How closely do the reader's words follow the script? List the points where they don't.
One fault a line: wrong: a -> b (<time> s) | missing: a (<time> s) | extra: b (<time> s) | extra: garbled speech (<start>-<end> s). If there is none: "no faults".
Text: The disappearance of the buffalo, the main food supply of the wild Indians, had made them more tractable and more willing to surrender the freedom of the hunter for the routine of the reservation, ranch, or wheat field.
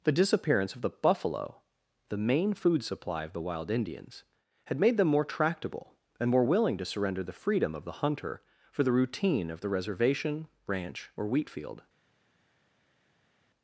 no faults